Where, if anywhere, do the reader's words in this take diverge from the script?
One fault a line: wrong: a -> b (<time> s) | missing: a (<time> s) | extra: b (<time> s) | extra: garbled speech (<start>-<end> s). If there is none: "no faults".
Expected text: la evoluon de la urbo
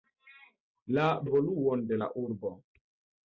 no faults